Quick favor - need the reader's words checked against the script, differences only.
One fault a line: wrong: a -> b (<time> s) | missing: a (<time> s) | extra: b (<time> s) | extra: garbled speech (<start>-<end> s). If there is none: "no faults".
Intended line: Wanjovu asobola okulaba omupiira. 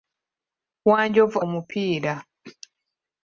missing: asobola okulaba (1.4 s)